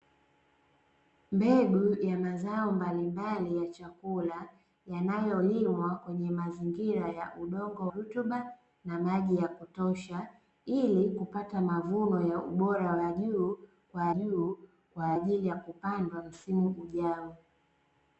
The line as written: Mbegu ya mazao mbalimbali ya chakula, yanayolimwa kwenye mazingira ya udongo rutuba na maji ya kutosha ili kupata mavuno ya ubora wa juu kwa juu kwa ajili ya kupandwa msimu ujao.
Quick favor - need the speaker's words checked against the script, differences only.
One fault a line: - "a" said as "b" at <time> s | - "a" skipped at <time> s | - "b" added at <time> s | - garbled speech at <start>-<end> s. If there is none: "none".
none